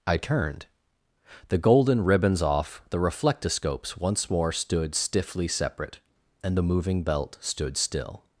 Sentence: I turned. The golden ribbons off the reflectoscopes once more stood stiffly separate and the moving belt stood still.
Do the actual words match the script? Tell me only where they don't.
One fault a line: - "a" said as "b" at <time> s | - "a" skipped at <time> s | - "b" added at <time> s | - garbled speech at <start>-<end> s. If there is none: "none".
none